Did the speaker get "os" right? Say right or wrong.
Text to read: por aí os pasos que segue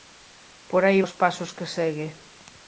right